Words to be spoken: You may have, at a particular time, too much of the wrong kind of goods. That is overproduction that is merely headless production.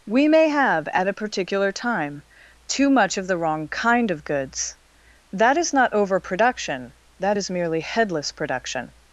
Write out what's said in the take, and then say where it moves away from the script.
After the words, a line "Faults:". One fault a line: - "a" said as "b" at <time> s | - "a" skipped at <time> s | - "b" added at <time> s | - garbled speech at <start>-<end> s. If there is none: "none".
We may have, at a particular time, too much of the wrong kind of goods. That is not overproduction that is merely headless production.
Faults:
- "You" said as "We" at 0.1 s
- "not" added at 5.7 s